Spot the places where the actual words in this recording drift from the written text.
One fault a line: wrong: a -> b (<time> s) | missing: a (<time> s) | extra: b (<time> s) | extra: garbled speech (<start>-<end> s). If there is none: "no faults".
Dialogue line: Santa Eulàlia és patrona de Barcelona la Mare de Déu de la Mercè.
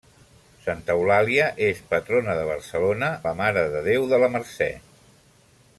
no faults